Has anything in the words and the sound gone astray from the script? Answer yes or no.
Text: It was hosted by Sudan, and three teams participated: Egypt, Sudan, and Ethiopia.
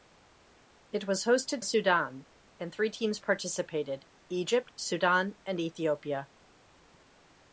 yes